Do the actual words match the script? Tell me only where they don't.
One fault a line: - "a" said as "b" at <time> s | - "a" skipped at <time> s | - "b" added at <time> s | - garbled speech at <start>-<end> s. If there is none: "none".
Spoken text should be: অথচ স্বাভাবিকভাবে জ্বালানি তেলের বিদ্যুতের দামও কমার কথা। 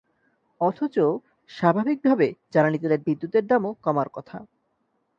none